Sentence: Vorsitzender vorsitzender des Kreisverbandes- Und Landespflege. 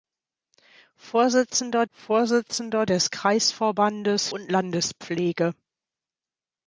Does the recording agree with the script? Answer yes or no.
yes